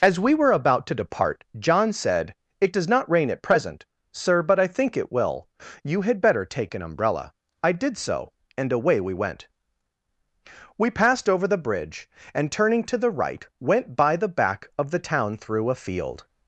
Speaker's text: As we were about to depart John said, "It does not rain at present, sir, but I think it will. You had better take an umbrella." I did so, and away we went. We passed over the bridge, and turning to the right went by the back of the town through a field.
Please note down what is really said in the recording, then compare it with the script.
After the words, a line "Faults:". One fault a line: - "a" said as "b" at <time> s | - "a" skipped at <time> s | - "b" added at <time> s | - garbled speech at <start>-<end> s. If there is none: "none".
As we were about to depart John said, "It does not rain at present, sir, but I think it will. You had better take an umbrella." I did so, and away we went. We passed over the bridge, and turning to the right went by the back of the town through a field.
Faults:
none